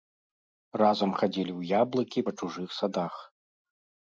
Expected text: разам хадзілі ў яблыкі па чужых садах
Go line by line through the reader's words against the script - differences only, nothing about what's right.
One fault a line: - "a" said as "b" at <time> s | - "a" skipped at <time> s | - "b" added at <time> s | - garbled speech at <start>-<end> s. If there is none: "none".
none